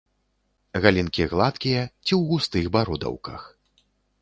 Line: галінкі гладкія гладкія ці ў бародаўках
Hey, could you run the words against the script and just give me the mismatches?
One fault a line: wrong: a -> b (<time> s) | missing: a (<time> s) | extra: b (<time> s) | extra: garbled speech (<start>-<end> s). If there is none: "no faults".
missing: гладкія (1.8 s)
extra: густых (2.3 s)